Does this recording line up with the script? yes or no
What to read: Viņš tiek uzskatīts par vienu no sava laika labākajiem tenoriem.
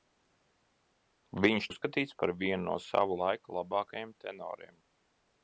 no